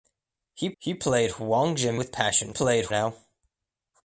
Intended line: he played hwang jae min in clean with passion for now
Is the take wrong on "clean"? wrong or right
wrong